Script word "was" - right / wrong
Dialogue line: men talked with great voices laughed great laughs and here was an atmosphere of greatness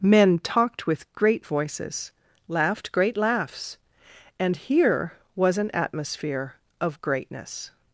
right